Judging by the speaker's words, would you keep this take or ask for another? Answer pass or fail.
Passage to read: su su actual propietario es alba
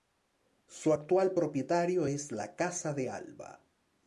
fail